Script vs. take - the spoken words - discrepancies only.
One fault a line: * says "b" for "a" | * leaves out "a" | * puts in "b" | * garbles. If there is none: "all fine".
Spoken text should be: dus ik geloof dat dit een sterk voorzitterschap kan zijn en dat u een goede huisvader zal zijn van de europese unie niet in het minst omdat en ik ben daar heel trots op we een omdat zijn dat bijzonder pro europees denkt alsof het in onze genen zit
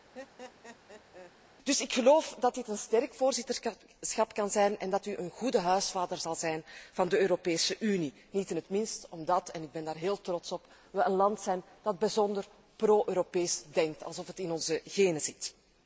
* says "land" for "omdat"